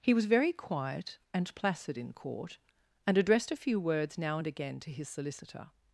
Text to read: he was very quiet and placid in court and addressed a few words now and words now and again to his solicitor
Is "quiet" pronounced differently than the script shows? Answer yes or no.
no